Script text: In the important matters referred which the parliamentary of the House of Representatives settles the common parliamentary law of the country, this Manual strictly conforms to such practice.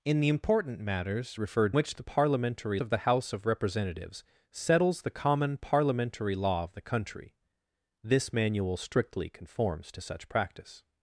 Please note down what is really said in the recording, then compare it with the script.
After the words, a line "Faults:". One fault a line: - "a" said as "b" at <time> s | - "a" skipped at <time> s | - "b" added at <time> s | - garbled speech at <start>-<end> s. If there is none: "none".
In the important matters referred which the parliamentary of the House of Representatives settles the common parliamentary law of the country, this Manual strictly conforms to such practice.
Faults:
none